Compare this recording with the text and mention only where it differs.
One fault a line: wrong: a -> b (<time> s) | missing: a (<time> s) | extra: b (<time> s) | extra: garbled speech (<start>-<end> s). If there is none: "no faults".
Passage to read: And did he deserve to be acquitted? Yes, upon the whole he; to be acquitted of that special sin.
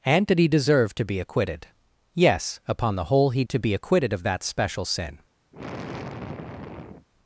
no faults